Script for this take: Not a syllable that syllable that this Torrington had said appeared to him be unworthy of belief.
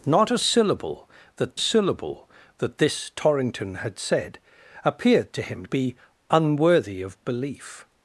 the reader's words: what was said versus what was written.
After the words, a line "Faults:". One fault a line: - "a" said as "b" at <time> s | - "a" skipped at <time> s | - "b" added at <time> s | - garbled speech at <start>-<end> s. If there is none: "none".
Not a syllable that syllable that this Torrington had said appeared to him be unworthy of belief.
Faults:
none